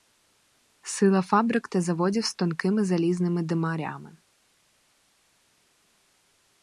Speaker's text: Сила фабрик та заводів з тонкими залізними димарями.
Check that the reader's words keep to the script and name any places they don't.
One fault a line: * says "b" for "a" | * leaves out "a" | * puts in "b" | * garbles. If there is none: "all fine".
all fine